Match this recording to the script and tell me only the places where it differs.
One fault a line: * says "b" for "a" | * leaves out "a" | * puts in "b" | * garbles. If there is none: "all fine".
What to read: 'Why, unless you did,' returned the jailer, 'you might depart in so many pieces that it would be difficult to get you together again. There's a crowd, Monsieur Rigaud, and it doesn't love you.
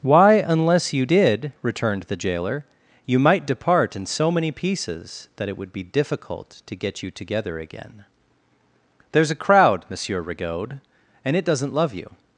all fine